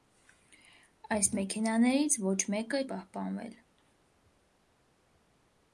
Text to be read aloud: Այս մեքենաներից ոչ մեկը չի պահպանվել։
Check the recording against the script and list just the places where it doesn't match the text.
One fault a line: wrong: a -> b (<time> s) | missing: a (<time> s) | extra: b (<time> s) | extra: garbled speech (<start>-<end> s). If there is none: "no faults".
missing: չի (2.8 s)